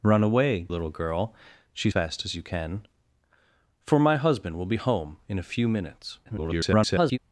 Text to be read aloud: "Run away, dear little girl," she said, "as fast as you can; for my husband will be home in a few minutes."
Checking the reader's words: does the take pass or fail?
fail